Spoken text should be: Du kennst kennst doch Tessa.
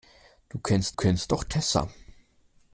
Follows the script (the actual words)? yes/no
yes